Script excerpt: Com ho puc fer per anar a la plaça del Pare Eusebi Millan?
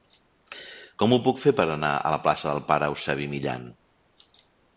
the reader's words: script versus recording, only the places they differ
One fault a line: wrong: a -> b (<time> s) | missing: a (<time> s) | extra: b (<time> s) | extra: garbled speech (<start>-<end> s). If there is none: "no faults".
no faults